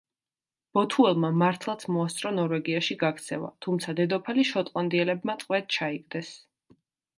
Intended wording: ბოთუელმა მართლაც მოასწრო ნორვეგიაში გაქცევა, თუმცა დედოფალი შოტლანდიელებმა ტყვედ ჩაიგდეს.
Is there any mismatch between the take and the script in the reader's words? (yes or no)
no